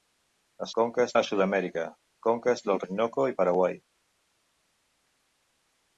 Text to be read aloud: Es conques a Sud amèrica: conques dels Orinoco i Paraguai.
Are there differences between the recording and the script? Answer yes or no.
no